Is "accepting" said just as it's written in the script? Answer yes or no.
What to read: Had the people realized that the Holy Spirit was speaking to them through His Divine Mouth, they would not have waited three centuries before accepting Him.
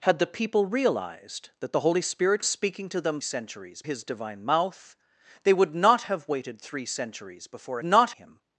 no